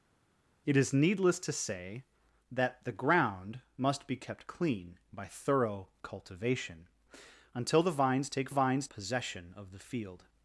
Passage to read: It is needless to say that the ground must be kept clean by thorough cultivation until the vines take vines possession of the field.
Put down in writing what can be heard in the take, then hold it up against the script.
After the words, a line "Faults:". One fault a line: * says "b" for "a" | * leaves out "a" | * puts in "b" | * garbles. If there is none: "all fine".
It is needless to say that the ground must be kept clean by thorough cultivation until the vines take vines possession of the field.
Faults:
all fine